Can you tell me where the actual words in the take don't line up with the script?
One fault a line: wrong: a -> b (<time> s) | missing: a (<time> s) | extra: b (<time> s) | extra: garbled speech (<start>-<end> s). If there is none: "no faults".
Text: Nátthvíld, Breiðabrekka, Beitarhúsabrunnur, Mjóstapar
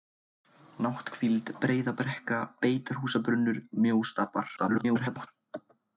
extra: garbled speech (4.6-5.3 s)